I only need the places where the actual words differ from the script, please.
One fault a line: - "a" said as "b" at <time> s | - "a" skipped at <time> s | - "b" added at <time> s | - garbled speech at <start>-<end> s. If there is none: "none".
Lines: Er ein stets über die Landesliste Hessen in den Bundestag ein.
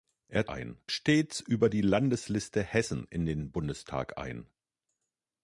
none